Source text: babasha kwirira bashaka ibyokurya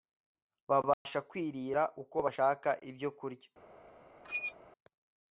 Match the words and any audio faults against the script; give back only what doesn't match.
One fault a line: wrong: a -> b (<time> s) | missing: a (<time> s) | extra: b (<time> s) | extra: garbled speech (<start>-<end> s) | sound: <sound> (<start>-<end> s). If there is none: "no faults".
sound: dropout (0.9-1.1 s)
extra: uko (2.0 s)
sound: squeak (4.2-4.5 s)